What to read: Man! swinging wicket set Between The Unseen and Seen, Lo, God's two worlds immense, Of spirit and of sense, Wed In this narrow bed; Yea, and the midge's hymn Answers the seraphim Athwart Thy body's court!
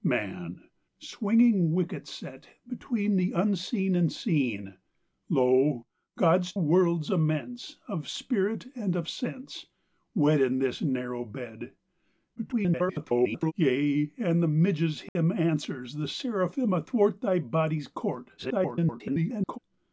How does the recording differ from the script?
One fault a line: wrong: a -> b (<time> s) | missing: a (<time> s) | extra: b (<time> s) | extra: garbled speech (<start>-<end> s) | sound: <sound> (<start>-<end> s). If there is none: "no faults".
missing: two (6.5 s)
extra: garbled speech (12.4-13.5 s)
sound: dropout (15.1-15.2 s)
extra: garbled speech (18.4-19.6 s)